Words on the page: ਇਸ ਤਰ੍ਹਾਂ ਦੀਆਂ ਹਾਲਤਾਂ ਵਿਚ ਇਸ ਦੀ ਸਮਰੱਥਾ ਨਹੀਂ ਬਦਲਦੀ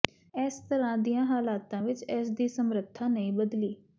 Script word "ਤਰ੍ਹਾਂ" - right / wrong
right